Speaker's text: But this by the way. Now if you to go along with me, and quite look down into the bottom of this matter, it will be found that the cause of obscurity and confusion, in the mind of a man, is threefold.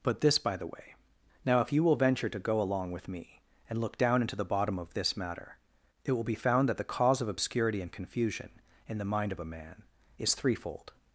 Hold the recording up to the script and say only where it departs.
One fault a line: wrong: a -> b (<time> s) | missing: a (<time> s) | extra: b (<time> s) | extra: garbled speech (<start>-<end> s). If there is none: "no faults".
extra: will venture (1.8 s)
missing: quite (3.8 s)